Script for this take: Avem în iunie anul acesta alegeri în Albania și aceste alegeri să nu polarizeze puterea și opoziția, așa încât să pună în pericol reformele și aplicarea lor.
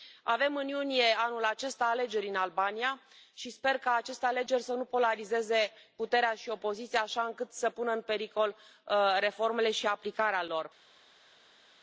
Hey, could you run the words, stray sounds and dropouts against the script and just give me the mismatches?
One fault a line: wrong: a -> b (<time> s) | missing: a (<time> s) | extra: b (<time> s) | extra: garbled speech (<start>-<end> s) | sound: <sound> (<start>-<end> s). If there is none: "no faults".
extra: sper ca (3.5 s)